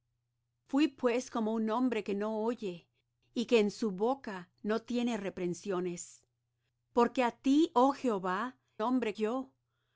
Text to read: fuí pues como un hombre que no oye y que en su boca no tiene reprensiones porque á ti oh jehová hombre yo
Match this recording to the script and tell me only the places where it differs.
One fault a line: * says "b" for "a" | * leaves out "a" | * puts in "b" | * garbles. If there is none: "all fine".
all fine